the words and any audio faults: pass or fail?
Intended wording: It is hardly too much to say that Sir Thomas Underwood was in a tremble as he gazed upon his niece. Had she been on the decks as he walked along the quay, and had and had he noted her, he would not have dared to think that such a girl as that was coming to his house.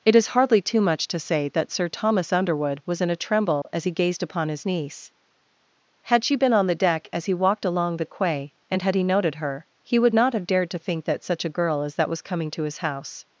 fail